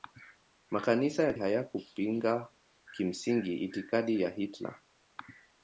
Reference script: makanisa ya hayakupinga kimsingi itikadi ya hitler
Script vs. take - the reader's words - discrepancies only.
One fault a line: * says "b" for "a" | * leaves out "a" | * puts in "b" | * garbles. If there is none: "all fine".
all fine